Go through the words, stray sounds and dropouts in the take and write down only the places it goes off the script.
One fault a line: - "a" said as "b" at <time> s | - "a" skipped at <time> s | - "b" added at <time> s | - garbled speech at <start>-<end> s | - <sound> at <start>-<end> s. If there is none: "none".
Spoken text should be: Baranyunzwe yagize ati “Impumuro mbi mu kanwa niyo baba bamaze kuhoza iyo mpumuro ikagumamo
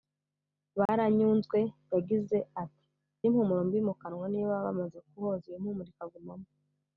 - dropout at 0.9-0.9 s